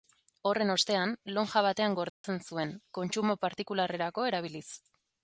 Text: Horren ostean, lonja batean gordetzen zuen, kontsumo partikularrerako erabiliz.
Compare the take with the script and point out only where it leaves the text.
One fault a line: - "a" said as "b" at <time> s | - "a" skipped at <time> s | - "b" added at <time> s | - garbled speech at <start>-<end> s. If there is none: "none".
none